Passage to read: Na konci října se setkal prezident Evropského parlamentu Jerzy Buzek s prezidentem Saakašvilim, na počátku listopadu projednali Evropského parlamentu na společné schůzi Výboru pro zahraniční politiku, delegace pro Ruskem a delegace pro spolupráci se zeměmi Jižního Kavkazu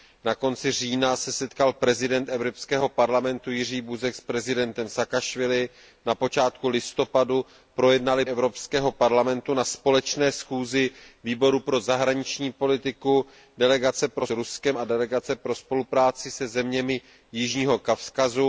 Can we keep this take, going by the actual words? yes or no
yes